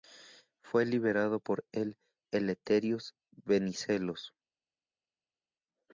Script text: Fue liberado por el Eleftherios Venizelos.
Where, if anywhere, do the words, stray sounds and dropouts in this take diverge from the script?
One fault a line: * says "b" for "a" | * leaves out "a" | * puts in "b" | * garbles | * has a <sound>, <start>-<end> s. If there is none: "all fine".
all fine